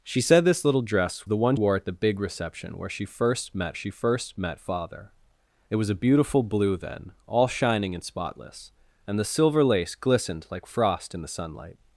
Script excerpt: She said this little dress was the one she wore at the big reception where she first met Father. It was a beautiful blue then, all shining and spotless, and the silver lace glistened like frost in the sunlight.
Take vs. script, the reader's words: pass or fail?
fail